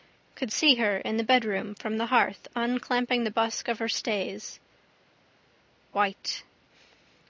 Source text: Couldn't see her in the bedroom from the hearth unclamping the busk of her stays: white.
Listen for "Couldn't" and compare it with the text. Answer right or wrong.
wrong